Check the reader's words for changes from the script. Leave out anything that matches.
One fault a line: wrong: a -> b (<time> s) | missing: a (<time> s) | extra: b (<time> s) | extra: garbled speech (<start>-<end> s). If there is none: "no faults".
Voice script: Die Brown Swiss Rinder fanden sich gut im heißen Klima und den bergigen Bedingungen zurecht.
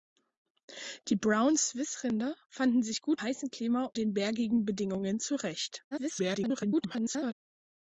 missing: im (3.2 s)
missing: und (3.9 s)
extra: garbled speech (5.9-7.3 s)